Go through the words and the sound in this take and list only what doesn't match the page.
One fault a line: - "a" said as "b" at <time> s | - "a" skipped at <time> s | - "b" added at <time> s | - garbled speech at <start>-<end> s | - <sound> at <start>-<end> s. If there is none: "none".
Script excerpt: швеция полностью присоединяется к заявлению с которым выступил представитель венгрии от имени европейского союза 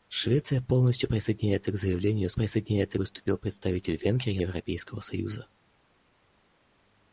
- "которым" said as "присоединяется" at 2.3 s
- "от имени" skipped at 4.4 s